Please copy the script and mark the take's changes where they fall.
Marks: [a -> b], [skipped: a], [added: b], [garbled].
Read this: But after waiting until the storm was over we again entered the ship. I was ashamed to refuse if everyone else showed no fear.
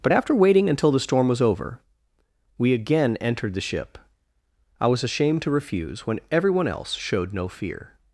But after waiting until the storm was over we again entered the ship. I was ashamed to refuse [if -> when] everyone else showed no fear.